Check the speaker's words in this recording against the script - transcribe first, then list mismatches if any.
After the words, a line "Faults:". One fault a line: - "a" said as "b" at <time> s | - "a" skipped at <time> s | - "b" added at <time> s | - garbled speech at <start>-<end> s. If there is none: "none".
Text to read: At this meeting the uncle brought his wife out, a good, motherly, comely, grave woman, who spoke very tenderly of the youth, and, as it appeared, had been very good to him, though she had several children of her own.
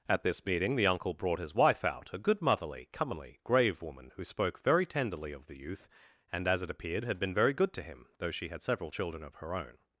At this meeting the uncle brought his wife out, a good, motherly, comely, grave woman, who spoke very tenderly of the youth, and, as it appeared, had been very good to him, though she had several children of her own.
Faults:
none